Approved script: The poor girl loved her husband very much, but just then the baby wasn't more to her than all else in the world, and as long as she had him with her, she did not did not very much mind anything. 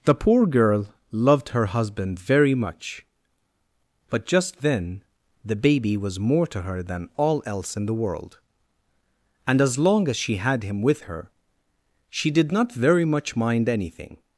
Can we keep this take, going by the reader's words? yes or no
no